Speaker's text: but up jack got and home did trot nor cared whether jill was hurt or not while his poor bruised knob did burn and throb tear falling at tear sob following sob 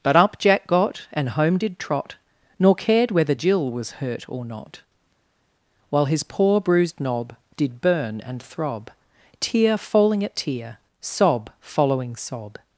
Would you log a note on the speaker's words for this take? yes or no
no